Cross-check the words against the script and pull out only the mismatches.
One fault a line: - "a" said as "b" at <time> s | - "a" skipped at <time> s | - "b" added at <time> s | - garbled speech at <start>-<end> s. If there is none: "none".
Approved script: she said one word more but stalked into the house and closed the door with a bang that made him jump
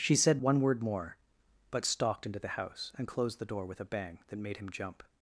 none